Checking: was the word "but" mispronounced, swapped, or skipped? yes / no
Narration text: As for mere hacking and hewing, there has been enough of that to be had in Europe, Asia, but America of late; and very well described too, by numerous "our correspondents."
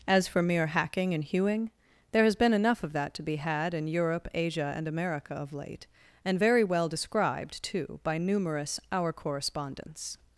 yes